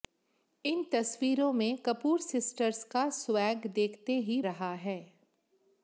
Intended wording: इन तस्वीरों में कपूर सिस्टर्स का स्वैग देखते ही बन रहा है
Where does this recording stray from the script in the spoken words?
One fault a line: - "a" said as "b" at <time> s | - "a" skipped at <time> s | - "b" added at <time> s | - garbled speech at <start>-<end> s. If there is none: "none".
- "बन" skipped at 4.4 s